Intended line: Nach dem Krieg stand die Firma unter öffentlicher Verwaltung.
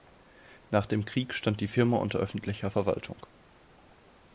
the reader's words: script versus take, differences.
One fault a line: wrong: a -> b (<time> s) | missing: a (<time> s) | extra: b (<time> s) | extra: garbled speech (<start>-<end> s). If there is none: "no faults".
no faults